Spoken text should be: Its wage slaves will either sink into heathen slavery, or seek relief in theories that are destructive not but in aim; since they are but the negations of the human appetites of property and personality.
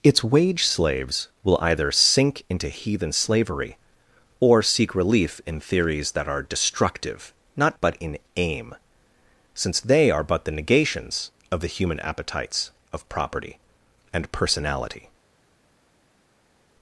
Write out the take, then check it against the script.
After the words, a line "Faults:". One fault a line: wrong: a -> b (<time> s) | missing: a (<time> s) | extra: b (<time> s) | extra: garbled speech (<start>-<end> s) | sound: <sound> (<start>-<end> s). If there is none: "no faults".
Its wage slaves will either sink into heathen slavery, or seek relief in theories that are destructive not but in aim; since they are but the negations of the human appetites of property and personality.
Faults:
no faults